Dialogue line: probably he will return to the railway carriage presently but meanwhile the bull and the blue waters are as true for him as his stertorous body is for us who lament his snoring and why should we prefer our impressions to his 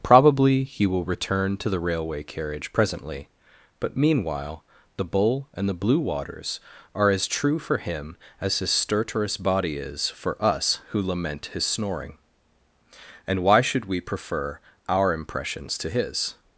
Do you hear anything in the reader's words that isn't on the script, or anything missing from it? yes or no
no